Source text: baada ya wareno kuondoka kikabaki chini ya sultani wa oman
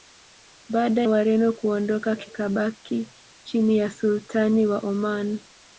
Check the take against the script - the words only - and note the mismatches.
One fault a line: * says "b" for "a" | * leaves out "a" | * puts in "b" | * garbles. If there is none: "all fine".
* leaves out "ya"